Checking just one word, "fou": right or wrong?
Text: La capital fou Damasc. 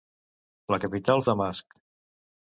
wrong